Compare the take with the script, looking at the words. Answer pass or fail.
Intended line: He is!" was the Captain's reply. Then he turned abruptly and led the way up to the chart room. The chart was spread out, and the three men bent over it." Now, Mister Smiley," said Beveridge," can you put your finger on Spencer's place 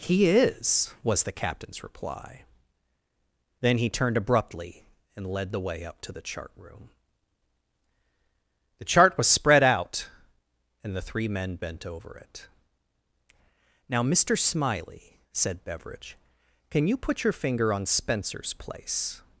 pass